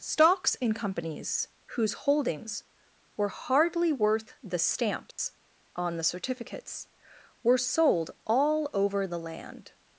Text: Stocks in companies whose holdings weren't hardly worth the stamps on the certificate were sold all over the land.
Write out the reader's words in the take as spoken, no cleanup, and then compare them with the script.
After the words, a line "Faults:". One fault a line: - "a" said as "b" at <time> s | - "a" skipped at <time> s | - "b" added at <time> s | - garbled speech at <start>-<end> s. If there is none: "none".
Stocks in companies whose holdings were hardly worth the stamps on the certificates were sold all over the land.
Faults:
- "weren't" said as "were" at 3.1 s
- "certificate" said as "certificates" at 6.0 s